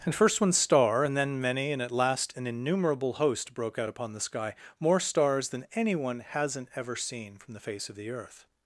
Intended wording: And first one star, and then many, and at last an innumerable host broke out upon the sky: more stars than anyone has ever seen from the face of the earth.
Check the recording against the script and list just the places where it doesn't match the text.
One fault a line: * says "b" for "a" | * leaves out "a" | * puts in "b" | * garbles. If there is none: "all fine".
* says "hasn't" for "has"